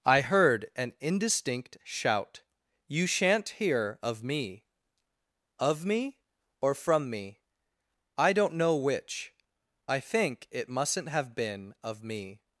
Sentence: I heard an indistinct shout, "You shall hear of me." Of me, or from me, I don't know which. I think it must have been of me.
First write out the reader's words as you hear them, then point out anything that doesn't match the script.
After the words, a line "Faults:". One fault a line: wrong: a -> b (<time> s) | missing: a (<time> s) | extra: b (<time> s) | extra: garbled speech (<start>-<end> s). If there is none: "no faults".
I heard an indistinct shout, "You shan't hear of me." Of me, or from me, I don't know which. I think it mustn't have been of me.
Faults:
wrong: shall -> shan't (3.0 s)
wrong: must -> mustn't (10.7 s)